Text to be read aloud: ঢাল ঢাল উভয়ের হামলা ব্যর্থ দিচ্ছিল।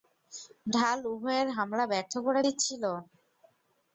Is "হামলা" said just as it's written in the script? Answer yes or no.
yes